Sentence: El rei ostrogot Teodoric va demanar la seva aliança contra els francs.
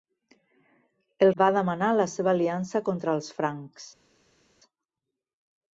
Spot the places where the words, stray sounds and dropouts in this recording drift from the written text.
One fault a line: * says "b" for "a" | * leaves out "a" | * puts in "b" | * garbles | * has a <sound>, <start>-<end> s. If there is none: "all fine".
* leaves out "rei ostrogot Teodoric"